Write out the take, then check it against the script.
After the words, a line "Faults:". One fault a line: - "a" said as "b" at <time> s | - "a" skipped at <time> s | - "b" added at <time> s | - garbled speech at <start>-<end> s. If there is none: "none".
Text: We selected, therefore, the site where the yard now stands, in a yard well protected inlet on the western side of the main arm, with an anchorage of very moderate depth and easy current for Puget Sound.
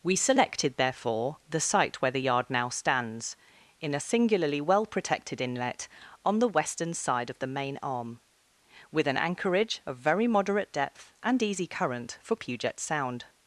We selected, therefore, the site where the yard now stands, in a singularly well protected inlet on the western side of the main arm, with an anchorage of very moderate depth and easy current for Puget Sound.
Faults:
- "yard" said as "singularly" at 4.0 s